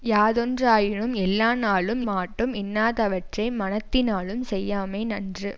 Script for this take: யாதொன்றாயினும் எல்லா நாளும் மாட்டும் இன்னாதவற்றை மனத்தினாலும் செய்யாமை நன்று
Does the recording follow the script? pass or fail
pass